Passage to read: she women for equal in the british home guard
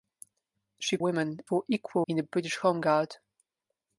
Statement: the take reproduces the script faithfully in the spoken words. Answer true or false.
true